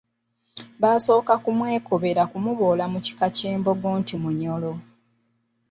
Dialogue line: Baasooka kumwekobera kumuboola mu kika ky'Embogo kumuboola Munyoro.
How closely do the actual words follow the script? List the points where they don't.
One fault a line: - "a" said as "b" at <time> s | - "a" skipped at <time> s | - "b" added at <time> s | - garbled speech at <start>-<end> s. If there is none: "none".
- "kumuboola" said as "nti" at 4.0 s